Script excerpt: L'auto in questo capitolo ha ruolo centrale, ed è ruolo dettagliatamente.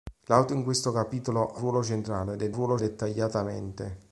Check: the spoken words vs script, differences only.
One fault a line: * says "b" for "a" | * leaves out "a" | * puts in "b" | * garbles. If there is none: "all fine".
all fine